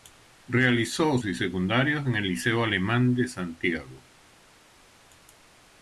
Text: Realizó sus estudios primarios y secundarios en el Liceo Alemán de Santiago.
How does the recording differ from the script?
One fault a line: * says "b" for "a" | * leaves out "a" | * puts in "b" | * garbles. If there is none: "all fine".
* leaves out "sus estudios primarios"